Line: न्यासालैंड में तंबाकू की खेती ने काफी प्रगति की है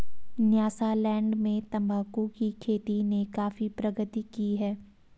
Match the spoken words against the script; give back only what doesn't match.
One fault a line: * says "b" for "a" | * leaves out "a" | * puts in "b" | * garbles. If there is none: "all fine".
all fine